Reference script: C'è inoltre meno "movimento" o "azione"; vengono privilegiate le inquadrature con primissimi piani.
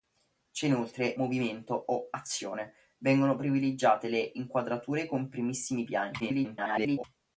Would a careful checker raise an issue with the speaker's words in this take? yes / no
yes